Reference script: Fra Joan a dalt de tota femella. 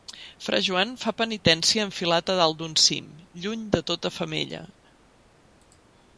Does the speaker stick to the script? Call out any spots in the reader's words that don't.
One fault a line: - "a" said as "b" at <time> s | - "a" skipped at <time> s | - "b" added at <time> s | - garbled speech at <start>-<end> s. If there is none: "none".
- "fa penitència enfilat" added at 1.0 s
- "d'un cim lluny" added at 2.6 s